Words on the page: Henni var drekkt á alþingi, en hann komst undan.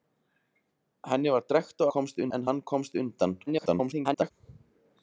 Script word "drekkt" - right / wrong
right